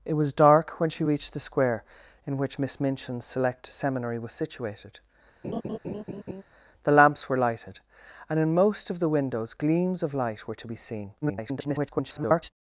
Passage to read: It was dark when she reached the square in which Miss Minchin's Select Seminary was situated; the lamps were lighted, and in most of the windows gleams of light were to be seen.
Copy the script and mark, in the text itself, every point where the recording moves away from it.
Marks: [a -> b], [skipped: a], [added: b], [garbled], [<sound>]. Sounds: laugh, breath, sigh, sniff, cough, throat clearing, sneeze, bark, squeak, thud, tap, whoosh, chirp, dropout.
It was dark when she reached the square in which Miss Minchin's Select Seminary was situated; [laugh] the lamps were lighted, and in most of the windows gleams of light were to be seen. [garbled]